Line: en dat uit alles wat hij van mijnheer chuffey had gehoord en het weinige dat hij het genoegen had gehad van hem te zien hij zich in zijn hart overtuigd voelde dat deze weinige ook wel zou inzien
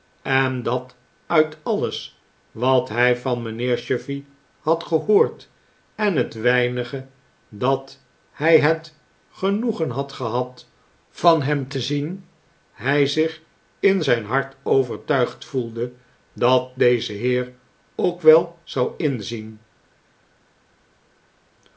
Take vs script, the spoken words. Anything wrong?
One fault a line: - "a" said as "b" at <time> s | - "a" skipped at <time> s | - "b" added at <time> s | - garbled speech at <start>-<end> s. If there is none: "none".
- "weinige" said as "heer" at 17.1 s